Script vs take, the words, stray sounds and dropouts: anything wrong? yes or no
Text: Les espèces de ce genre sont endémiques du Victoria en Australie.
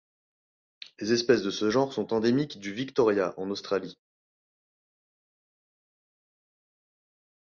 no